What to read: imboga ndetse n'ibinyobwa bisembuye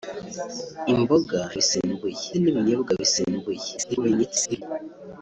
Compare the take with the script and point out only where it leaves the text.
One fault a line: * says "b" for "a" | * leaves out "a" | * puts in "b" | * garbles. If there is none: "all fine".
* says "bisembuye" for "ndetse"
* garbles